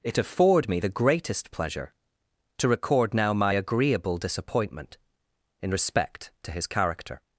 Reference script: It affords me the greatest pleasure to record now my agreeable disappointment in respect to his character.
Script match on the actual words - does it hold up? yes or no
no